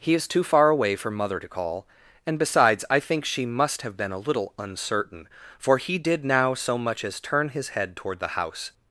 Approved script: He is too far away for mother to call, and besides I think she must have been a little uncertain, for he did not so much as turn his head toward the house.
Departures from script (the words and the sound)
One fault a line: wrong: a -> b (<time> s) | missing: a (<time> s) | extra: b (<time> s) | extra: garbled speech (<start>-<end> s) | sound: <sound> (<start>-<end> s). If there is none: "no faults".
wrong: not -> now (6.2 s)